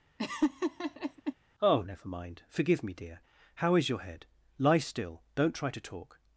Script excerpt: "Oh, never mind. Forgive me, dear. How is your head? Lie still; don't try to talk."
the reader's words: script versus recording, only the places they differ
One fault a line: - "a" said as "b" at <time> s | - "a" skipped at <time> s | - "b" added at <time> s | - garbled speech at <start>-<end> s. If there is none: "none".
none